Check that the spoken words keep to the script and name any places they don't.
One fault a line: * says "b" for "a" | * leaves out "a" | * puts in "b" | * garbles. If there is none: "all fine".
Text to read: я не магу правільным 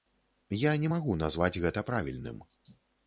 * puts in "назваць гэта"